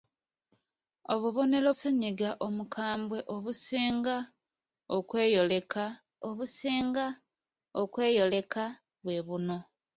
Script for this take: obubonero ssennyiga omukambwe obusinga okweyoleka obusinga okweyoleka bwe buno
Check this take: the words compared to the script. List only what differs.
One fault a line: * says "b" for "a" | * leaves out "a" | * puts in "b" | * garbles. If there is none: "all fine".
all fine